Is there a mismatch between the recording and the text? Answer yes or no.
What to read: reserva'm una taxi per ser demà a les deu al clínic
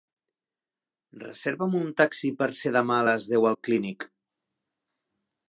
yes